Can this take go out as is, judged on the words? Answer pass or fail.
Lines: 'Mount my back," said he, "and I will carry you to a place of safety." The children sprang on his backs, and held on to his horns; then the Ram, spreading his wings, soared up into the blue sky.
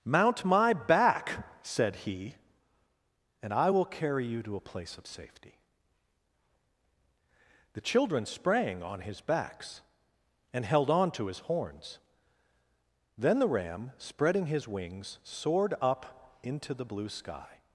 pass